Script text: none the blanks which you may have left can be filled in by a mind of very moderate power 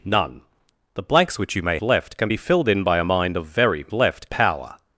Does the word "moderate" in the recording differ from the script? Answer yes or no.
yes